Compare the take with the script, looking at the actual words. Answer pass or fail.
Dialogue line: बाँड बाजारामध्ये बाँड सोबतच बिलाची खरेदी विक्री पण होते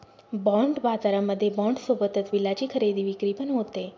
pass